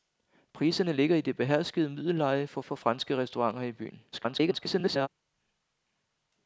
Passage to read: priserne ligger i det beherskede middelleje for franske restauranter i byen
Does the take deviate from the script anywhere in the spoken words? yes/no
yes